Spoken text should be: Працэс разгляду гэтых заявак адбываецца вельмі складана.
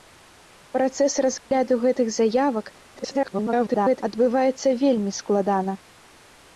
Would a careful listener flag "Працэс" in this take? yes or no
no